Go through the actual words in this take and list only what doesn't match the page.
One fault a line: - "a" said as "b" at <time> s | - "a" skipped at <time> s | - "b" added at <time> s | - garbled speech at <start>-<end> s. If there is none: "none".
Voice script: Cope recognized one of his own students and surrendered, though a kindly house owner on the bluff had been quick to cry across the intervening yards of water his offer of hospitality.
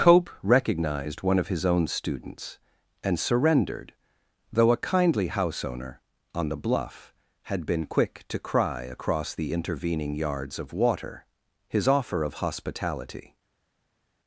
none